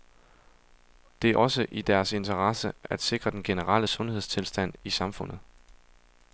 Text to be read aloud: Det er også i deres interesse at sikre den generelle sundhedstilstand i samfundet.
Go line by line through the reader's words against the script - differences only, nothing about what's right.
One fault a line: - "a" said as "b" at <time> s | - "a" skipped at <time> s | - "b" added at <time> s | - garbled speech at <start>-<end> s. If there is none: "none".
none